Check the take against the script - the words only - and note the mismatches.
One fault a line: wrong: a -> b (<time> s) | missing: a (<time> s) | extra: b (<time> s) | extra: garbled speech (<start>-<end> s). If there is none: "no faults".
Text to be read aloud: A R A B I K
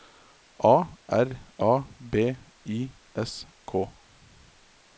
extra: S (3.1 s)